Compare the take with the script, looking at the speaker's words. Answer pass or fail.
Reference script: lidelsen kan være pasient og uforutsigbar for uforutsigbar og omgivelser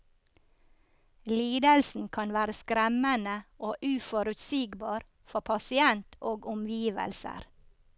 fail